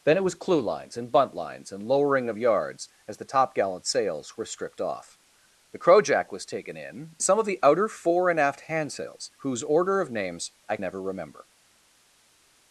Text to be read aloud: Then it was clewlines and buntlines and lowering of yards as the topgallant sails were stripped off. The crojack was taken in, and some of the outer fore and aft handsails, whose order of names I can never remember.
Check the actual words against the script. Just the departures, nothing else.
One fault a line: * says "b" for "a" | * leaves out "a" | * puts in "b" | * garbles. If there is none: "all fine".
* leaves out "and"
* leaves out "can"